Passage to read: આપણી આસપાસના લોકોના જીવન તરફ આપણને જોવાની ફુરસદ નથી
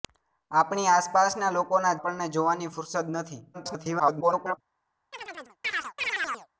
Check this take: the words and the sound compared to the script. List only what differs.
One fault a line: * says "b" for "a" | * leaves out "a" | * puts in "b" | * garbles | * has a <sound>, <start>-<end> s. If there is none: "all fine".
* leaves out "જીવન તરફ"
* garbles
* has a chirp, 5.1-6.5 s